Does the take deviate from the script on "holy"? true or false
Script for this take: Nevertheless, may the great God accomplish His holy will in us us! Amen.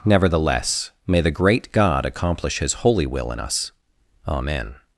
false